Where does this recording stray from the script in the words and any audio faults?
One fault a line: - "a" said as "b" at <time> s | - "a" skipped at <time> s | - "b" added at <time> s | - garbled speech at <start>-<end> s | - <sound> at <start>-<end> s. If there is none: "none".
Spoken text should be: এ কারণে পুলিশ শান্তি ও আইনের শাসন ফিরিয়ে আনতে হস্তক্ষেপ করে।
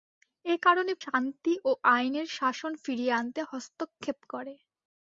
- "পুলিশ" skipped at 0.9 s